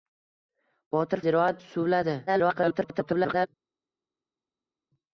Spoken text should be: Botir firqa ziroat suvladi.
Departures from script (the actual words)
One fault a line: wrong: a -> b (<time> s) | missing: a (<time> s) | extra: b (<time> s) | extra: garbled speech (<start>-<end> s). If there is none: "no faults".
missing: firqa (1.2 s)
extra: garbled speech (2.3-3.5 s)